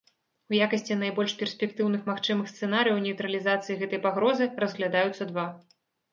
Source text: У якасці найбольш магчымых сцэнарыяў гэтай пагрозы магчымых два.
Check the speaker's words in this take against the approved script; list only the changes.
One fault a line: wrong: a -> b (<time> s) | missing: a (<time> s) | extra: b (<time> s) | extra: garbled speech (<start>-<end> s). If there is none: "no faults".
extra: перспектыўных (1.4 s)
extra: нейтралізацыі (3.1 s)
wrong: магчымых -> разглядаюцца (4.7 s)